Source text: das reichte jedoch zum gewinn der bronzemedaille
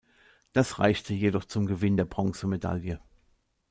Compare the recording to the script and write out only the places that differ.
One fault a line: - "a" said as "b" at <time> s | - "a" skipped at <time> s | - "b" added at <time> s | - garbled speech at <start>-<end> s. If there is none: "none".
none